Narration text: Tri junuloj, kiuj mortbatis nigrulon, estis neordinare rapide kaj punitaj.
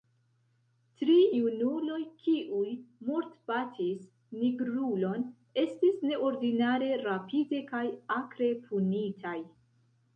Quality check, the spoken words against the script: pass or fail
fail